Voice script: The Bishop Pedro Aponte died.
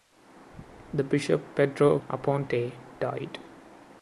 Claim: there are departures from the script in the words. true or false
false